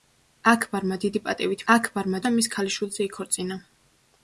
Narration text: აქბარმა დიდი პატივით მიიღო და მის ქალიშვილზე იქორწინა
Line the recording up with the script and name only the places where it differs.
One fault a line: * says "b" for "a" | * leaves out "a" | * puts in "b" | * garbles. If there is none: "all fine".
* says "აქბარმა" for "მიიღო"